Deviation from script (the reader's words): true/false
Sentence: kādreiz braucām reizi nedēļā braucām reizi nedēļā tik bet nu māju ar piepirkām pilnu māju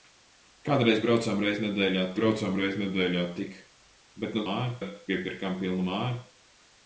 false